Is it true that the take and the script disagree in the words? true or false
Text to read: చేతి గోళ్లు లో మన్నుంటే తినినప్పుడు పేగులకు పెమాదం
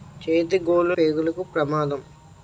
true